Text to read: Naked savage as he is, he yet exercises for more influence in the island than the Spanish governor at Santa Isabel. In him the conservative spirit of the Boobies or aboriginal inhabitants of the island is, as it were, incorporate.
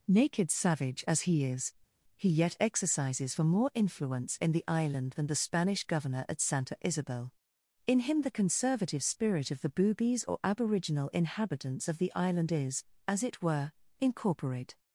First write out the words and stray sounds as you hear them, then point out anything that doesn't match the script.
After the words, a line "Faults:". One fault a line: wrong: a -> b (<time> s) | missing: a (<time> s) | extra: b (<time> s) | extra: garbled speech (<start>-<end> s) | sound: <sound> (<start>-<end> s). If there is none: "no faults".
Naked savage as he is, he yet exercises for more influence in the island than the Spanish governor at Santa Isabel. In him the conservative spirit of the Boobies or aboriginal inhabitants of the island is, as it were, incorporate.
Faults:
no faults